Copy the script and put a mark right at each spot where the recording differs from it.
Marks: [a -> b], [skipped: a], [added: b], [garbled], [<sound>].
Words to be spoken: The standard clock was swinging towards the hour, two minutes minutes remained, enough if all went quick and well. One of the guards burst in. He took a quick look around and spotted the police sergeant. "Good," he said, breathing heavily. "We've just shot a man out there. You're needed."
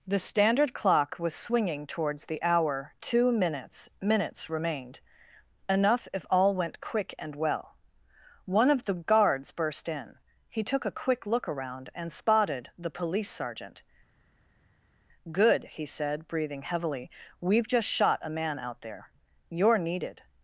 The standard clock was swinging towards the hour, two minutes minutes remained, enough if all went quick and well. One of the guards burst in. He took a quick look around and spotted the police sergeant. "Good," he said, breathing heavily. "We've just shot a man out there. You're needed."